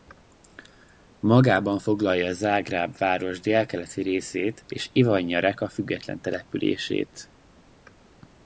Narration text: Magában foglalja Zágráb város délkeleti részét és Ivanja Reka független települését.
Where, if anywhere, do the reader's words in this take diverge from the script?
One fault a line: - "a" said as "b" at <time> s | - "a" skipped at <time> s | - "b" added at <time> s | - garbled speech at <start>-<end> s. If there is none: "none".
none